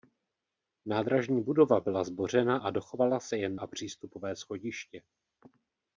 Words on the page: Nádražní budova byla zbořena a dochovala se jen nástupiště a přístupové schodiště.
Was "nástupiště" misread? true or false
true